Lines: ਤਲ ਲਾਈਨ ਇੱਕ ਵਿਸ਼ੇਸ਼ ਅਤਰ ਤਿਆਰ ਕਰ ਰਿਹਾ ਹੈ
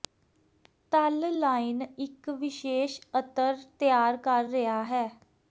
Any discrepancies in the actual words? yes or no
no